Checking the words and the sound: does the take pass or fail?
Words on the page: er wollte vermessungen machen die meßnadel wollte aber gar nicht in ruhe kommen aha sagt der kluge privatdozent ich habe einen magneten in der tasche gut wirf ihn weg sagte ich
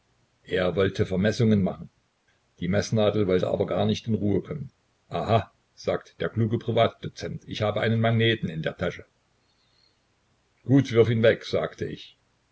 pass